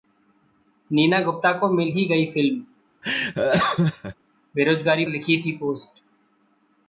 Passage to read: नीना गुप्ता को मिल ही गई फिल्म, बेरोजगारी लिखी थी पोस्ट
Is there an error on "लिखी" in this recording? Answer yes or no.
no